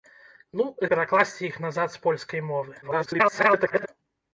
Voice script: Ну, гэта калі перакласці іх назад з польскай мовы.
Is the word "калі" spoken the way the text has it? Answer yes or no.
no